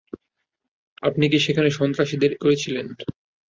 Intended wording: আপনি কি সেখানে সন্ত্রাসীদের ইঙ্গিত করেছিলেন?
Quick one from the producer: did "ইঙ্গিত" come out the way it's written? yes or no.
no